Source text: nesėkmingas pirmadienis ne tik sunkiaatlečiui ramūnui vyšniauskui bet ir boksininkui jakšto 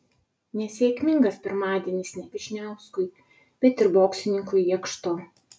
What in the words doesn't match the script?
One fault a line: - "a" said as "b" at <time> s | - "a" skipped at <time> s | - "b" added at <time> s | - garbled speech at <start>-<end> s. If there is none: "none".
- "tik sunkiaatlečiui ramūnui" skipped at 2.2 s